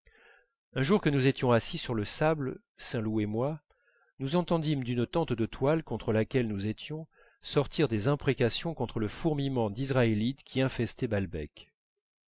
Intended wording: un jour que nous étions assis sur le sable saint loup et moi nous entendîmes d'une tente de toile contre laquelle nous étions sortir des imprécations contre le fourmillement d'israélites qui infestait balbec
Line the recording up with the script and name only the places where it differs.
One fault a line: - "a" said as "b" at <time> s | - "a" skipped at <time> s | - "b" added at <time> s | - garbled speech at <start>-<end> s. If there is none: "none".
none